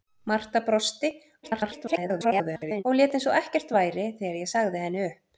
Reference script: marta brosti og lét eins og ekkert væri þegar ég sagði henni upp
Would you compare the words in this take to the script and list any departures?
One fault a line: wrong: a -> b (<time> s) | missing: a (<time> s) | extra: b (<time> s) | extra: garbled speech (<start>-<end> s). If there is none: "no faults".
extra: garbled speech (1.4-2.8 s)